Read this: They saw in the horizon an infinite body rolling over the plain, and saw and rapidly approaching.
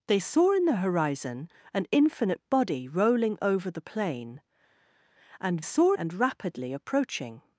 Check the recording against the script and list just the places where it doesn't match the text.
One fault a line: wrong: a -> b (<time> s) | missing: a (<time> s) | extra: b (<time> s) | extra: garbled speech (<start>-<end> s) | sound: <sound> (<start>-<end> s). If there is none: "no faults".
no faults